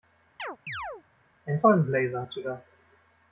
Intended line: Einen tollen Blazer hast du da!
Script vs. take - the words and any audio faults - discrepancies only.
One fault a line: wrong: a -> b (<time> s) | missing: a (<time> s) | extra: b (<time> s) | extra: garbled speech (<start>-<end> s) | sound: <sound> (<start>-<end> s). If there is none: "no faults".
sound: chirp (0.4-1.0 s)